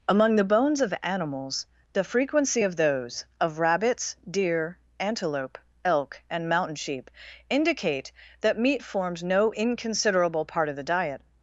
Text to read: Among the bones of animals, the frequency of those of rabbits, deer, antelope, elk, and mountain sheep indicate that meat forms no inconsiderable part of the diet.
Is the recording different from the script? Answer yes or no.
no